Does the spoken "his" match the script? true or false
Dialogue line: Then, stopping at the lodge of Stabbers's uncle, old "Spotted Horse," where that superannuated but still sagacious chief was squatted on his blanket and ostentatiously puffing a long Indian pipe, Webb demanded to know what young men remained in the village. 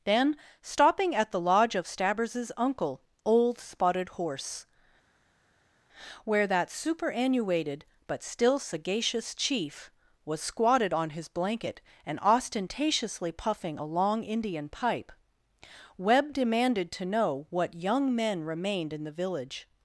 true